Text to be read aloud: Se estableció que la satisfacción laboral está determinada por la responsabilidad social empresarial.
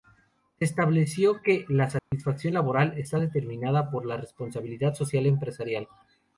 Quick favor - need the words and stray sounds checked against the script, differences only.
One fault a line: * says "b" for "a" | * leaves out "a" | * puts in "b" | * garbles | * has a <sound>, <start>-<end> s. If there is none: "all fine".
* has a dropout, 2.0-2.1 s